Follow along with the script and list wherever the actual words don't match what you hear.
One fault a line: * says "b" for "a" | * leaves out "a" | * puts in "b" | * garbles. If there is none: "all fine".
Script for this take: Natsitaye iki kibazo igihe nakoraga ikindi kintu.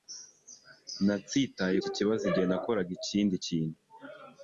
all fine